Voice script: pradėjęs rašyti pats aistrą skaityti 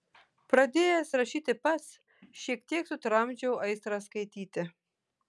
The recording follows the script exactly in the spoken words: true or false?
false